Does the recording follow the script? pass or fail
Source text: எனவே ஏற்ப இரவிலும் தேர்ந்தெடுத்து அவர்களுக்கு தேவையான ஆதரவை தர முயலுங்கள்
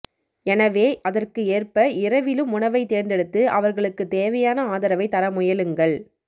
fail